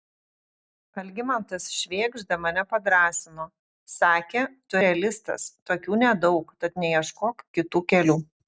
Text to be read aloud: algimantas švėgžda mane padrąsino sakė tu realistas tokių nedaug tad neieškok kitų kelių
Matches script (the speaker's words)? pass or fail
pass